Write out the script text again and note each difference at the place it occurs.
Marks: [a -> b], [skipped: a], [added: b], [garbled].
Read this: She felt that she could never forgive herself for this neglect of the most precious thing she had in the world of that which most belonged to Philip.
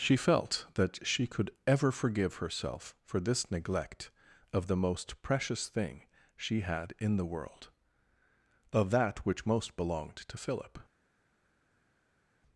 She felt that she could [never -> ever] forgive herself for this neglect of the most precious thing she had in the world of that which most belonged to Philip.